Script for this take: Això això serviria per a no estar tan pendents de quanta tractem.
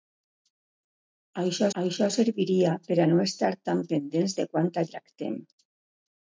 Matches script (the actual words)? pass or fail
pass